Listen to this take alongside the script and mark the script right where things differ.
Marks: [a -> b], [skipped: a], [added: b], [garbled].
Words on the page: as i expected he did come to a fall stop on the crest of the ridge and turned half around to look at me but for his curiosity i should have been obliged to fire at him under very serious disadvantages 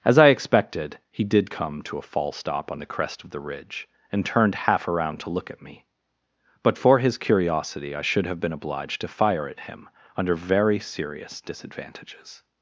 as i expected he did come to a fall stop on the crest of the ridge and turned half around to look at me but for his curiosity i should have been obliged to fire at him under very serious disadvantages